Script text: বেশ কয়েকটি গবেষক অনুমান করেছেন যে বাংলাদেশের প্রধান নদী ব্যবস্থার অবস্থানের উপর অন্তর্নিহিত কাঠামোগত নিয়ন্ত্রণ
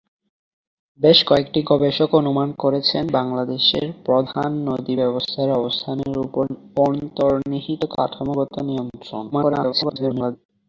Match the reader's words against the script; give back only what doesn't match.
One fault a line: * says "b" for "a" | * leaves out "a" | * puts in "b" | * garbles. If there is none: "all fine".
* leaves out "যে"
* garbles